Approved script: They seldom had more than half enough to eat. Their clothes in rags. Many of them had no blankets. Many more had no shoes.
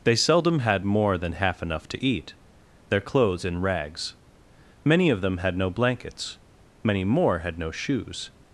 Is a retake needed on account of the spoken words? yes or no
no